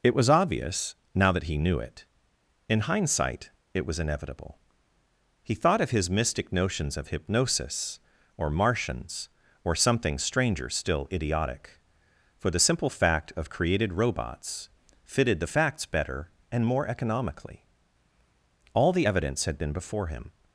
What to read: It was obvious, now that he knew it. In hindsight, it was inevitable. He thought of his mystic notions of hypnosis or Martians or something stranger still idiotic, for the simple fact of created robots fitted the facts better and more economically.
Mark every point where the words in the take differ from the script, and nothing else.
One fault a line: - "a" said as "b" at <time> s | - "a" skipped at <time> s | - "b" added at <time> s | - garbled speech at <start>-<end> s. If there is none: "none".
- "All the evidence had been before him" added at 18.7 s